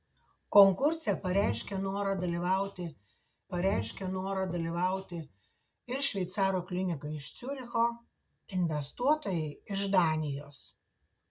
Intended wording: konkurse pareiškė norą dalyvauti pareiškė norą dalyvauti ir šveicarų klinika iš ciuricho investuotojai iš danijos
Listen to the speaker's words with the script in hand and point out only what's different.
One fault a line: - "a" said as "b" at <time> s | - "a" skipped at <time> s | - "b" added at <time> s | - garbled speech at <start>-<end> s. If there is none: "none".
none